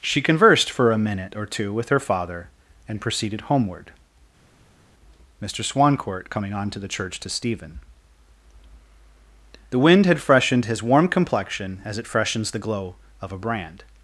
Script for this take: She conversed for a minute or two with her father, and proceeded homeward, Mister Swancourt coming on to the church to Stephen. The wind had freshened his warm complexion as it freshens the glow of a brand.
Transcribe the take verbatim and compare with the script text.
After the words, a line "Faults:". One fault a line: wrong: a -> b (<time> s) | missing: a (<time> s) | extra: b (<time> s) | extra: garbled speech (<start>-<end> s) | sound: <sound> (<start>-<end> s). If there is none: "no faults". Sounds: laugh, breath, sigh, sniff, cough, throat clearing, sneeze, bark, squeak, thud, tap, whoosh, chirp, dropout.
She conversed for a minute or two with her father, and proceeded homeward, Mister Swancourt coming on to the church to Stephen. The wind had freshened his warm complexion as it freshens the glow of a brand.
Faults:
no faults